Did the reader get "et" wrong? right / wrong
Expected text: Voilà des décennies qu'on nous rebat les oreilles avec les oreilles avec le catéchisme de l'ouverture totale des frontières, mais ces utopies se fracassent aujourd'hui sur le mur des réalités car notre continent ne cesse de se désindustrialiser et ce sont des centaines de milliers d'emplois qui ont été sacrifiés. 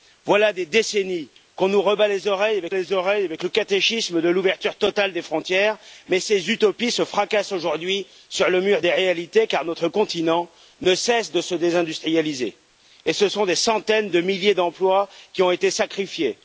right